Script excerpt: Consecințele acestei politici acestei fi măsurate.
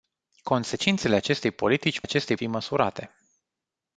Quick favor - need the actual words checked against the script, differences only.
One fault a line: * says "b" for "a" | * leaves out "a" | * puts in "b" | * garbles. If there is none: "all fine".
all fine